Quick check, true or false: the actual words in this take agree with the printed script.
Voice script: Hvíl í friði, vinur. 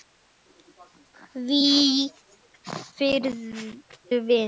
true